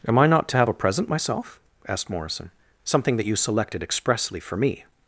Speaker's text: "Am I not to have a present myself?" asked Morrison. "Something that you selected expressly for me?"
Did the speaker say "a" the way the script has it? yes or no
yes